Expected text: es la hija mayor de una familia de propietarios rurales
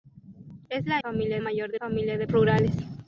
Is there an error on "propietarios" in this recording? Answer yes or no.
yes